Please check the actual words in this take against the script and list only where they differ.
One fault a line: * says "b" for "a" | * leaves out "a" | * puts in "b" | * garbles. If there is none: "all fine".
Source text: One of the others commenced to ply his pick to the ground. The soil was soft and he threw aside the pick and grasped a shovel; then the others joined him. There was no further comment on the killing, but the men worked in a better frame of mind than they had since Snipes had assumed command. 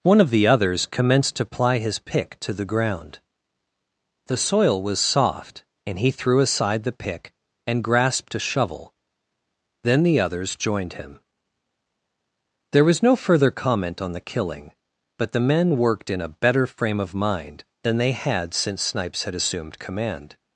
all fine